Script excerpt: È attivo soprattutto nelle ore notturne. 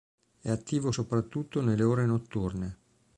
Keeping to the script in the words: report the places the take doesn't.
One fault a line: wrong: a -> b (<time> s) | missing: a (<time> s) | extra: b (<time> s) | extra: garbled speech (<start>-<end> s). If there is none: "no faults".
no faults